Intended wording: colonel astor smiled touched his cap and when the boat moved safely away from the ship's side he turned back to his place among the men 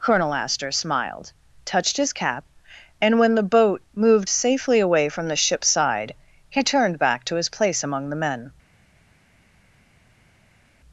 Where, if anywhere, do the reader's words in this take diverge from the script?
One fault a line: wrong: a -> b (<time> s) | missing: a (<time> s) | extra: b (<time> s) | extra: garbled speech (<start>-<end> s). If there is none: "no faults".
no faults